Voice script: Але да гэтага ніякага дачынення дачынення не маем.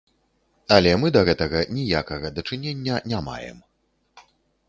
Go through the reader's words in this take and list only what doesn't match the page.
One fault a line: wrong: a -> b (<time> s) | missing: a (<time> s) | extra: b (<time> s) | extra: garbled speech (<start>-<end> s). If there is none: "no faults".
extra: мы (1.0 s)
missing: дачынення (3.0 s)